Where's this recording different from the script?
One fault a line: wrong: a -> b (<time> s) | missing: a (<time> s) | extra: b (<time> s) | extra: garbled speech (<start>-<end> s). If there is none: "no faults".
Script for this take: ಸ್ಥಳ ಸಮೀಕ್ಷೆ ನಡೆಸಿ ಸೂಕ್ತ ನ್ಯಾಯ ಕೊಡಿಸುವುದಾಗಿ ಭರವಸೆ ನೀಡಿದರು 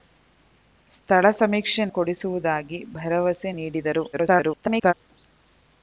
missing: ನಡೆಸಿ ಸೂಕ್ತ ನ್ಯಾಯ (1.8 s)
extra: garbled speech (4.1-4.9 s)